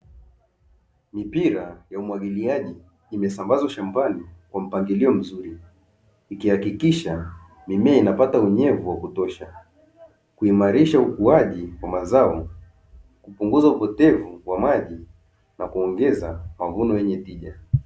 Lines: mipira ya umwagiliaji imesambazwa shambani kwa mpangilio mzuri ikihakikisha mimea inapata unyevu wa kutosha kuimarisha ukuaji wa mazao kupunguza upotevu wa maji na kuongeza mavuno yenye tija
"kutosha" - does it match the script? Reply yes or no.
yes